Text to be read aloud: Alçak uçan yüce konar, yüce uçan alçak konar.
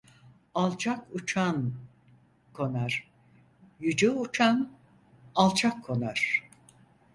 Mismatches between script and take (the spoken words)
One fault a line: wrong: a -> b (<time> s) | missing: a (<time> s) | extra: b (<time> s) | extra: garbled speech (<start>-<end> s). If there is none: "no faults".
missing: yüce (1.7 s)